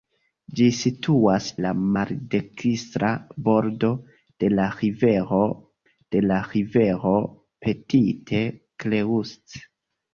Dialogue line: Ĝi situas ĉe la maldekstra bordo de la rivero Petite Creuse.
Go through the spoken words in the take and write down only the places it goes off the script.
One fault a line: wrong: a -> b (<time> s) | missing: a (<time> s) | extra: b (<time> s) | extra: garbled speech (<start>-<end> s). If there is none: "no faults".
missing: ĉe (1.5 s)
extra: de la rivero (5.9 s)